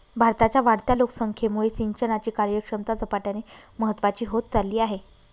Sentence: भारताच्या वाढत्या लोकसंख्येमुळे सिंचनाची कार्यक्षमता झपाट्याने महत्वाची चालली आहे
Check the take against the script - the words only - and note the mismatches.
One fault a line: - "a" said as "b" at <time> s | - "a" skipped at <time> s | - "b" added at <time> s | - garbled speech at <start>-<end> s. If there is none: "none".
- "होत" added at 4.3 s